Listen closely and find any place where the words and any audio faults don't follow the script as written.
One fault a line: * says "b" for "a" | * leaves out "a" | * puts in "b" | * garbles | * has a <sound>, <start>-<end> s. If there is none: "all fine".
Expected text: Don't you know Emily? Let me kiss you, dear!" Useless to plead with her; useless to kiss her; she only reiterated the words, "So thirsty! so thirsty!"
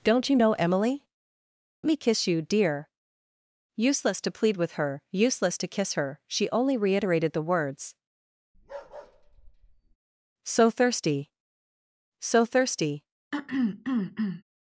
* leaves out "Let"
* has a bark, 8.5-10.0 s
* has a throat clearing, 13.3-14.4 s